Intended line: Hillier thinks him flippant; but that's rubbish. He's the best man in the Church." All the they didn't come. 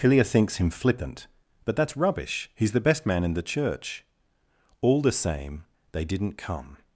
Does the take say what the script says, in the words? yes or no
no